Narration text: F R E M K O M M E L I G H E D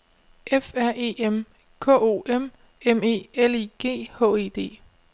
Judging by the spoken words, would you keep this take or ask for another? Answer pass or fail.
pass